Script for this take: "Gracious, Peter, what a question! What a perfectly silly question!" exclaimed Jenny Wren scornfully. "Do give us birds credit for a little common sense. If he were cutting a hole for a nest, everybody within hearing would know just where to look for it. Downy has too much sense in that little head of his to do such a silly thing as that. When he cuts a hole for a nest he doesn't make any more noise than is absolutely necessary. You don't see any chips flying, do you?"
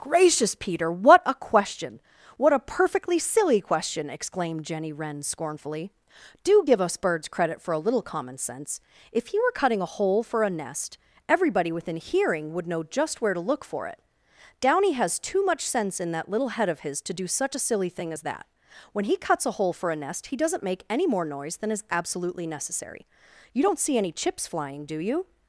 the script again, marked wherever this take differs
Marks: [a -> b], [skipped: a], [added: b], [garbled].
"Gracious, Peter, what a question! What a perfectly silly question!" exclaimed Jenny Wren scornfully. "Do give us birds credit for a little common sense. If he were cutting a hole for a nest, everybody within hearing would know just where to look for it. Downy has too much sense in that little head of his to do such a silly thing as that. When he cuts a hole for a nest he doesn't make any more noise than is absolutely necessary. You don't see any chips flying, do you?"